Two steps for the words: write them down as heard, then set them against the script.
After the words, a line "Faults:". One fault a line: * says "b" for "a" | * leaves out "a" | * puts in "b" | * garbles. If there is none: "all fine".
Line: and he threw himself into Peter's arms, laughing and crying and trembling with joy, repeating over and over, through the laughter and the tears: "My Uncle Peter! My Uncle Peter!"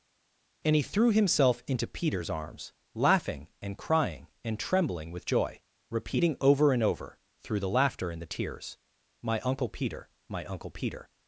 and he threw himself into Peter's arms, laughing and crying and trembling with joy, repeating over and over, through the laughter and the tears: "My Uncle Peter! My Uncle Peter!"
Faults:
all fine